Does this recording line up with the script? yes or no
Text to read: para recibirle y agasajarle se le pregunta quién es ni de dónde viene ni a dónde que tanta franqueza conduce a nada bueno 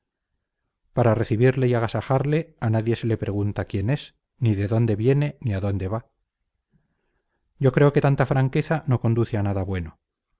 no